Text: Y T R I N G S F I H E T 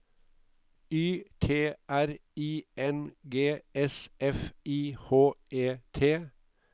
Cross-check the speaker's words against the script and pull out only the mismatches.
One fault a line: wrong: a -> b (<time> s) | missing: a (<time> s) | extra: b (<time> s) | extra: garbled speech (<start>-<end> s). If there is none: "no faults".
no faults